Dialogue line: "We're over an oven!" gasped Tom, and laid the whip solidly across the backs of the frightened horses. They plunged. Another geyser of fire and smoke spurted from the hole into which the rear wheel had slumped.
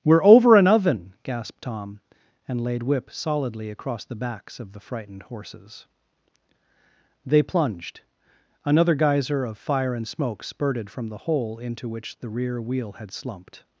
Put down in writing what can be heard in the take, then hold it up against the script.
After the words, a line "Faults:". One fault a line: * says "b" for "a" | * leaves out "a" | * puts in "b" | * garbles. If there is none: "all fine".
"We're over an oven!" gasped Tom, and laid whip solidly across the backs of the frightened horses. They plunged. Another geyser of fire and smoke spurted from the hole into which the rear wheel had slumped.
Faults:
* leaves out "the"